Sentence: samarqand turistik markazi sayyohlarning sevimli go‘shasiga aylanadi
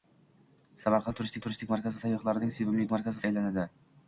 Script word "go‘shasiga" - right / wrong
wrong